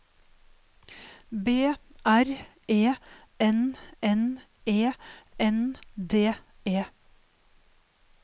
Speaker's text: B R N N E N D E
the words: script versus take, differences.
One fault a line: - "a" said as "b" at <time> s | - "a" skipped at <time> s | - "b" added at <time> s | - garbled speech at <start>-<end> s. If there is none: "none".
- "E" added at 2.7 s